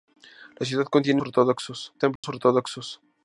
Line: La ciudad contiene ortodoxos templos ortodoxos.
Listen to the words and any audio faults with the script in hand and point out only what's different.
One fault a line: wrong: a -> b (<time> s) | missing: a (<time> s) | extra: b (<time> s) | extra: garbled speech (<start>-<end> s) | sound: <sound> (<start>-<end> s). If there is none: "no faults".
sound: dropout (2.2-2.2 s)